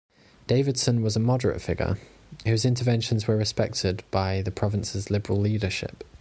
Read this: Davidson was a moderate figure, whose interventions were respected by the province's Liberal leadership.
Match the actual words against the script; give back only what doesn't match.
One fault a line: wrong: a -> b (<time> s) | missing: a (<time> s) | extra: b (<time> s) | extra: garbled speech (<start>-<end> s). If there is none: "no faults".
no faults